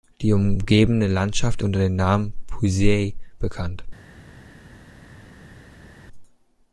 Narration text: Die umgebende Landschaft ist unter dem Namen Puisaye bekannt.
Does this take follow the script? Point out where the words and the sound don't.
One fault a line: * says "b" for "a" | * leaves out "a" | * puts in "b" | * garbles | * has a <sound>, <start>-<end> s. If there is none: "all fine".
* leaves out "ist"